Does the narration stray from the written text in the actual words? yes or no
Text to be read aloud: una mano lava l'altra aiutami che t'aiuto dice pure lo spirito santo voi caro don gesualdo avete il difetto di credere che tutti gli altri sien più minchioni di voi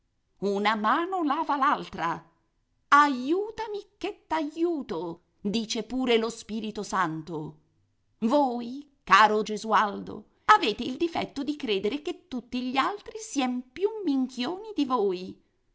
yes